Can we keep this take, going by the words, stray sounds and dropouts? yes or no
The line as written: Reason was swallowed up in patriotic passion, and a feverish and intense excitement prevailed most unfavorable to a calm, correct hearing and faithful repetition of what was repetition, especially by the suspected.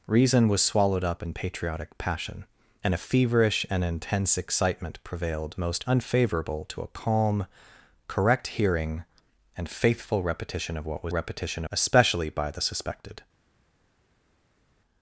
yes